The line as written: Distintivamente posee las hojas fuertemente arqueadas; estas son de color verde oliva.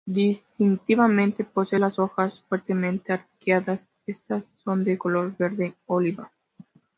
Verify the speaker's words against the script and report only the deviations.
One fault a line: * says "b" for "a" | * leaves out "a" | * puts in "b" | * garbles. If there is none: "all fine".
all fine